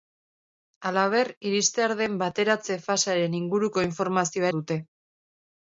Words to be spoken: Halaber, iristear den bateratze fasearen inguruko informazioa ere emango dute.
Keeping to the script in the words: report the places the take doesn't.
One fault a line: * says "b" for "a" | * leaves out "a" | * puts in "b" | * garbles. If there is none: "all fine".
* leaves out "ere emango"